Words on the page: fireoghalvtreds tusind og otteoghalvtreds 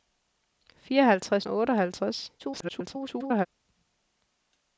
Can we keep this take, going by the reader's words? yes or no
no